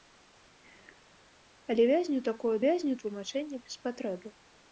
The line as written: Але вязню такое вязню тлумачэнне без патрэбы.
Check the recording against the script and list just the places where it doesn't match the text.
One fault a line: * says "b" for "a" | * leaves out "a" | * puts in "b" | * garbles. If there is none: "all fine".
all fine